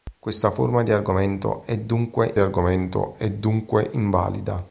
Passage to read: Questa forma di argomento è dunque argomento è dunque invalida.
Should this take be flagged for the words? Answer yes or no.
no